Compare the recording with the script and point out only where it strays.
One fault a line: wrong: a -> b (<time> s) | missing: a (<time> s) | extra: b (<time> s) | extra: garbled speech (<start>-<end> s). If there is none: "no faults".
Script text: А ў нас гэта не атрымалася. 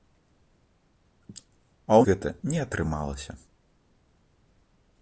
missing: нас (2.0 s)